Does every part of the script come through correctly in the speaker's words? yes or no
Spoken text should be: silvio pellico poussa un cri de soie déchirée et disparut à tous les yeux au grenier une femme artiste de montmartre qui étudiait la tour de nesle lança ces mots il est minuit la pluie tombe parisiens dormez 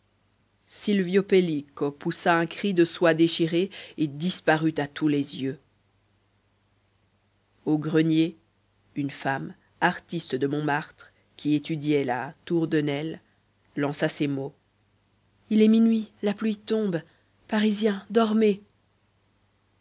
yes